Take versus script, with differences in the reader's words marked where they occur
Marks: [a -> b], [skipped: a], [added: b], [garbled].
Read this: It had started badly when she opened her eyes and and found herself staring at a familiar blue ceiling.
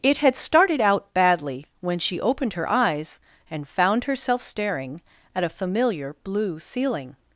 It had started [added: out] badly when she opened her eyes and [skipped: and] found herself staring at a familiar blue ceiling.